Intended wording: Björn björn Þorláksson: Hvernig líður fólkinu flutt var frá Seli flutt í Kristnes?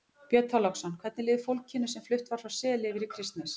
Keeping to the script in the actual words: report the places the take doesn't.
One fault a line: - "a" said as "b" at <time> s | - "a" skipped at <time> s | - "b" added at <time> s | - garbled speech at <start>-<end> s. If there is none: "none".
- "björn" skipped at 0.5 s
- "sem" added at 1.9 s
- "flutt" said as "yfir" at 3.0 s